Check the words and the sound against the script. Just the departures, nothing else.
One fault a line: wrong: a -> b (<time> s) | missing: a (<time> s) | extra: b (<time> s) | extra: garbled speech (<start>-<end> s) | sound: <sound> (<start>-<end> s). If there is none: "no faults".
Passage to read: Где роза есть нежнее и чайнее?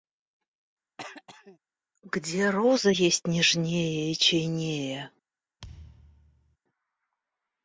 sound: throat clearing (1.0-1.6 s)
sound: thud (5.6-6.6 s)